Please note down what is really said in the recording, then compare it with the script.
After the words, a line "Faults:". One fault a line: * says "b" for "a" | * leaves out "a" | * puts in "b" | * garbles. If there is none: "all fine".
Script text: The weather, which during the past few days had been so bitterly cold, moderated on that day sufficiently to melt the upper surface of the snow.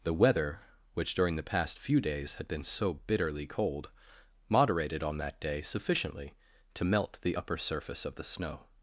The weather, which during the past few days had been so bitterly cold, moderated on that day sufficiently to melt the upper surface of the snow.
Faults:
all fine